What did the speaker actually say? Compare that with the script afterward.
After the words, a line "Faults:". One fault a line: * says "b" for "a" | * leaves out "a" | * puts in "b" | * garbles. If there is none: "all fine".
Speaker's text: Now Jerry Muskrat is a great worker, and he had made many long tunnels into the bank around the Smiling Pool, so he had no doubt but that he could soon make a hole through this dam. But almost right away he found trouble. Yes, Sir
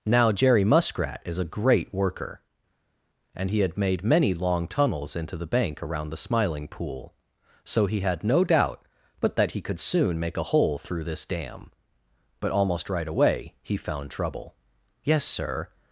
Now Jerry Muskrat is a great worker, and he had made many long tunnels into the bank around the Smiling Pool, so he had no doubt but that he could soon make a hole through this dam. But almost right away he found trouble. Yes, Sir
Faults:
all fine